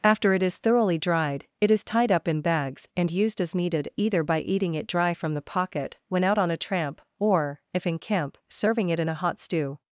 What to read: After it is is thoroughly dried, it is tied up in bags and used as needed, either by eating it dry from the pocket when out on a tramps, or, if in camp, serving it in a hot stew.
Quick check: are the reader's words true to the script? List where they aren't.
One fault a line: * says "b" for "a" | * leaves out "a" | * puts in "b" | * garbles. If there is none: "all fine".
* leaves out "is"
* says "tramp" for "tramps"